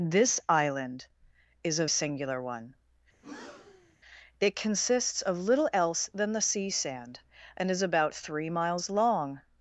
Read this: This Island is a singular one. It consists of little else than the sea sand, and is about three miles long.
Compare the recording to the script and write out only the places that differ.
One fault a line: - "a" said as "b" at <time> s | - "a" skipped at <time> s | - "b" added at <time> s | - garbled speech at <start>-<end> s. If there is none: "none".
none